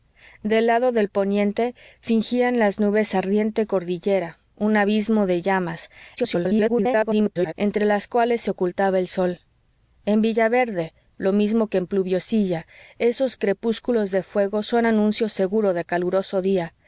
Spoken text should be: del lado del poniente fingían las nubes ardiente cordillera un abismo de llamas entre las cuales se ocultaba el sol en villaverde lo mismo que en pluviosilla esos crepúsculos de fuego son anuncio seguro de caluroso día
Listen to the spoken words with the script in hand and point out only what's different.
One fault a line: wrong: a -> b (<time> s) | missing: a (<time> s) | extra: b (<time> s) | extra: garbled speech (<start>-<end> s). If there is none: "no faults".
extra: garbled speech (6.2-7.5 s)